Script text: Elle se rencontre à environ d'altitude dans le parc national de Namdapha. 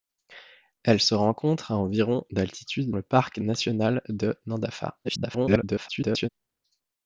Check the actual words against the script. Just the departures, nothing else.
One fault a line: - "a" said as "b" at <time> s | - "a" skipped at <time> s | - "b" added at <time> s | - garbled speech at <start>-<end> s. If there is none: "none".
- "dans" skipped at 3.0 s
- garbled speech at 5.0-6.3 s